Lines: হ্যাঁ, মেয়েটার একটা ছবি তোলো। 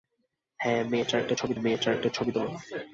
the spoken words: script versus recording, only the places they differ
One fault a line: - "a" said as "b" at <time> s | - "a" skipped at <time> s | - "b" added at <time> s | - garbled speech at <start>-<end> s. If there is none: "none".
- "মেয়েটার একটা ছবি" added at 1.5 s